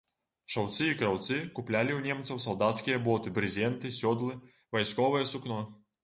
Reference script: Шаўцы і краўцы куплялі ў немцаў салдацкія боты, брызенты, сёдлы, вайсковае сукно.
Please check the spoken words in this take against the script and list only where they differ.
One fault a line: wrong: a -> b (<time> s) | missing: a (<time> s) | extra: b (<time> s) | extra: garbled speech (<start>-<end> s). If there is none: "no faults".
no faults